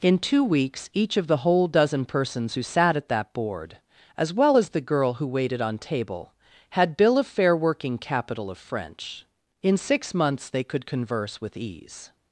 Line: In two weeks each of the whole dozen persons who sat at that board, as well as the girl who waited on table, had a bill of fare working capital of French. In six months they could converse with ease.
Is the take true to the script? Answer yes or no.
no